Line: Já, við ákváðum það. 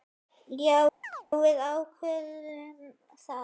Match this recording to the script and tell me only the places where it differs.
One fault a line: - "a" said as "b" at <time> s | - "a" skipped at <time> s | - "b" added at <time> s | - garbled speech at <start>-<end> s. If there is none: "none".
none